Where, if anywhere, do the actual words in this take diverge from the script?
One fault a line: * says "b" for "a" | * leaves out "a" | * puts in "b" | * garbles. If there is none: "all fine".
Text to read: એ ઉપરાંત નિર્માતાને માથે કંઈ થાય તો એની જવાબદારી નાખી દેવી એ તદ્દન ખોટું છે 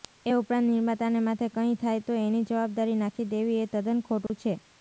all fine